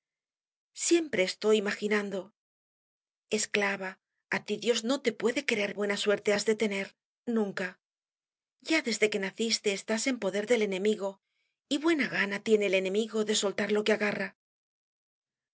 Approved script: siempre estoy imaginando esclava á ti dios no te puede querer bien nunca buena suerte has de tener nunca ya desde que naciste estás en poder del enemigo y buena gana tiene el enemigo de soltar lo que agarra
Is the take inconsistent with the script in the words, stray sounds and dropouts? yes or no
yes